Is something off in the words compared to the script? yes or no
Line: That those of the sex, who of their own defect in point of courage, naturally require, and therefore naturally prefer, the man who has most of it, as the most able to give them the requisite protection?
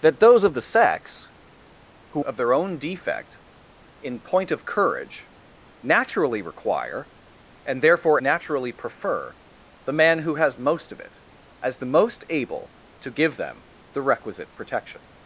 no